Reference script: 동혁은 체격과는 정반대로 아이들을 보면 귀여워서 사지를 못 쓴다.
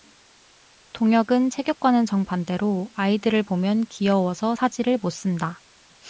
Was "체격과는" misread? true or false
false